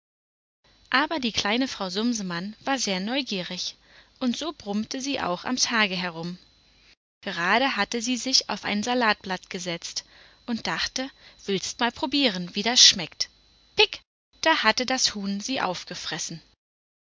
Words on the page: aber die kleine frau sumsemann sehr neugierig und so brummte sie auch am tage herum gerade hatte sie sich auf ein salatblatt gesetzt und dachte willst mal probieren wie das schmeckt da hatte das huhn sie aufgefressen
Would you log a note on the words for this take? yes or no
yes